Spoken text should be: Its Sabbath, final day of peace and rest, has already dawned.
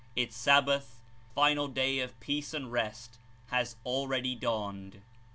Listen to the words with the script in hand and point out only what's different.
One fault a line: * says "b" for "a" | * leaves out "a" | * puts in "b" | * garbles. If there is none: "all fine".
all fine